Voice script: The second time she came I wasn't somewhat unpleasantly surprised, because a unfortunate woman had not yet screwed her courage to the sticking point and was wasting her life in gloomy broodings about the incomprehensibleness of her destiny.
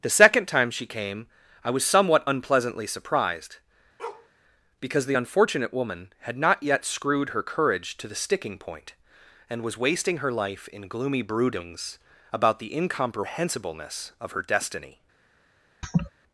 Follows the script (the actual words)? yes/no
no